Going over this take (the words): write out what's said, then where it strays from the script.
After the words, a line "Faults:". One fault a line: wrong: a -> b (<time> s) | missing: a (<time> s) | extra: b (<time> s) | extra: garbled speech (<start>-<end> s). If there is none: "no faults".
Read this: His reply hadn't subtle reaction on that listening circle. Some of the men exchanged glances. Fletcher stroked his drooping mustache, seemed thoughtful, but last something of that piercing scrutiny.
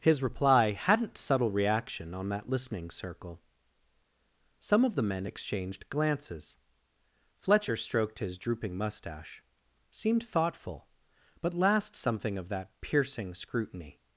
His reply hadn't subtle reaction on that listening circle. Some of the men exchanged glances. Fletcher stroked his drooping mustache, seemed thoughtful, but last something of that piercing scrutiny.
Faults:
no faults